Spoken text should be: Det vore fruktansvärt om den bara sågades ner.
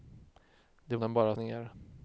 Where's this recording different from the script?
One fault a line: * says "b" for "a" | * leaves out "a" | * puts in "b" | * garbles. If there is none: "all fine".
* leaves out "vore fruktansvärt om"
* leaves out "sågades"